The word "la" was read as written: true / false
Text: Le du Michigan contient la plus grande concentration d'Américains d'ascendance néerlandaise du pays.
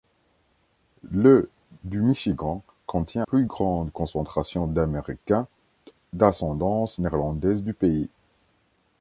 false